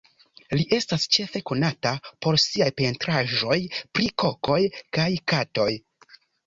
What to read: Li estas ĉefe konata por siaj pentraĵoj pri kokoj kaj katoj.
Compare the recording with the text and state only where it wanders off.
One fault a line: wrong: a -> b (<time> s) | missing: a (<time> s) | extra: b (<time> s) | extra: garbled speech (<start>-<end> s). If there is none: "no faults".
no faults